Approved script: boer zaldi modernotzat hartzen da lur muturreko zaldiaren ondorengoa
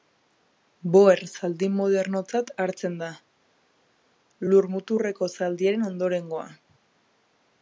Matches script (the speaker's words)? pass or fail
pass